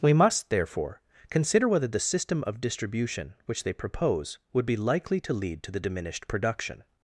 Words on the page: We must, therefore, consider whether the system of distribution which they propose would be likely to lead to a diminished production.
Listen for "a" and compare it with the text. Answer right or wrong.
wrong